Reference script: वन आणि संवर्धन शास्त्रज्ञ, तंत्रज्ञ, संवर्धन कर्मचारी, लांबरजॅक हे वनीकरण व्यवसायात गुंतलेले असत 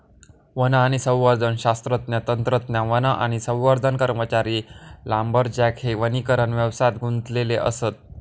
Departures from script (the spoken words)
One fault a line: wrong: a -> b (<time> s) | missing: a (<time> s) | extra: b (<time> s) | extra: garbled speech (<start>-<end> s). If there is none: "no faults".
extra: वन आणि (2.9 s)